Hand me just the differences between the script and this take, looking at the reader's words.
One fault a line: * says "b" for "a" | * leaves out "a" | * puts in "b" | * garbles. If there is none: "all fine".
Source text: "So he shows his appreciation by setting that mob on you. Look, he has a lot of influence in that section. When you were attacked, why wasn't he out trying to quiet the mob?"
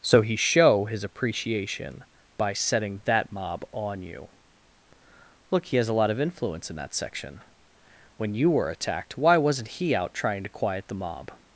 * says "show" for "shows"